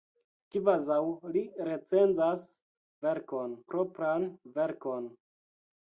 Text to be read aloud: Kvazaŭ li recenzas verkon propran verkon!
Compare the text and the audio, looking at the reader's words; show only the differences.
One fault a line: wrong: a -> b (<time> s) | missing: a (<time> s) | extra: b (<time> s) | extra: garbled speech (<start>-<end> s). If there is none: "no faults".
no faults